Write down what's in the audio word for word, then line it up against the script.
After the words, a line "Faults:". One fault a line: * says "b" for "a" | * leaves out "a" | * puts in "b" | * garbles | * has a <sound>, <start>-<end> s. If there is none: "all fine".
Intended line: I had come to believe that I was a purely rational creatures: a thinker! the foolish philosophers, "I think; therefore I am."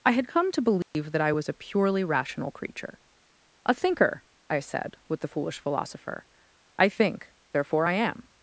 I had come to believe that I was a purely rational creature: a thinker! I said, with the foolish philosopher, "I think; therefore I am."
Faults:
* has a dropout, 0.8-0.9 s
* says "creature" for "creatures"
* puts in "I said with"
* says "philosopher" for "philosophers"